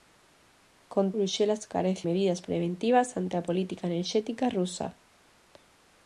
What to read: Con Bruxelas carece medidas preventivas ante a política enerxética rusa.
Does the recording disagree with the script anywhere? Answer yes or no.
no